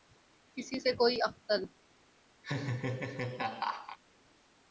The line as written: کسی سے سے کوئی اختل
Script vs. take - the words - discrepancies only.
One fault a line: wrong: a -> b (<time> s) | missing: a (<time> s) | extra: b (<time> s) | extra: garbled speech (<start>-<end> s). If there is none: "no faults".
missing: سے (0.9 s)